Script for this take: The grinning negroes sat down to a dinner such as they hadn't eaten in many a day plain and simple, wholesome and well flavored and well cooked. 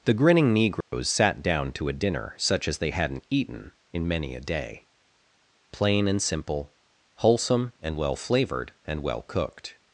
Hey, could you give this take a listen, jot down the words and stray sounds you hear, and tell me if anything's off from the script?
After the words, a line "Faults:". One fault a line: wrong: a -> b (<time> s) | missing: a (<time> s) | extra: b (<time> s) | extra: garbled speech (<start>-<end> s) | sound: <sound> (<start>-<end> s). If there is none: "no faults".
The grinning negroes sat down to a dinner such as they hadn't eaten in many a day plain and simple, wholesome and well flavored and well cooked.
Faults:
sound: dropout (0.8-0.9 s)